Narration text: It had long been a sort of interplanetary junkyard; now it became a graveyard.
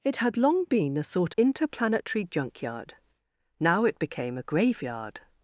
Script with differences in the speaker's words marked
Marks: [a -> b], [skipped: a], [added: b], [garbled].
It had long been a sort [skipped: of] interplanetary junkyard; now it became a graveyard.